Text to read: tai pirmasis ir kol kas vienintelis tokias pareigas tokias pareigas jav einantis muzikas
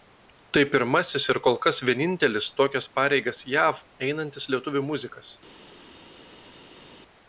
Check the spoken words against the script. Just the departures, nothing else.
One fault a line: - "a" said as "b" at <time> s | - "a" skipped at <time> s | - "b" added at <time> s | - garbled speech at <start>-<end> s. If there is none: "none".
- "tokias pareigas" skipped at 3.4 s
- "lietuvių" added at 4.6 s